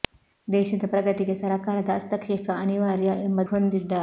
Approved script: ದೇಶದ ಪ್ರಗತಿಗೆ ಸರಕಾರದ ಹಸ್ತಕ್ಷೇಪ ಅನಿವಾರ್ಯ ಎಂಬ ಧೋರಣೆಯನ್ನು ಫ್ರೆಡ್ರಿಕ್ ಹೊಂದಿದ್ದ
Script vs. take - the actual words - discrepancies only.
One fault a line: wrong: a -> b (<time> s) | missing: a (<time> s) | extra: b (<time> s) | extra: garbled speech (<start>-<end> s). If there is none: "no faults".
missing: ಧೋರಣೆಯನ್ನು ಫ್ರೆಡ್ರಿಕ್ (3.4 s)